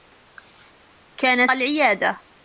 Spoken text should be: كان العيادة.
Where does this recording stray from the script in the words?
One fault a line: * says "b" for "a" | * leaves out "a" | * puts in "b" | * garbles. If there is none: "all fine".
all fine